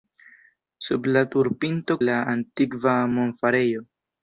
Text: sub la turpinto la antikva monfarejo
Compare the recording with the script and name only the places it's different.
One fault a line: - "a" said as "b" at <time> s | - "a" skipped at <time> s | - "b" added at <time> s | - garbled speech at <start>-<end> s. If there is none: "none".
none